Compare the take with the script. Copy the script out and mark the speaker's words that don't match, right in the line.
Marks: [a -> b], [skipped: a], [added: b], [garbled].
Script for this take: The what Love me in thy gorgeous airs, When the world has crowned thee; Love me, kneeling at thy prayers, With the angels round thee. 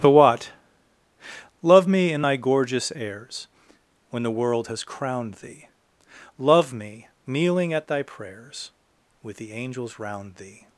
The what Love me in thy gorgeous airs, When the world has crowned thee; Love me, kneeling at thy prayers, With the angels round thee.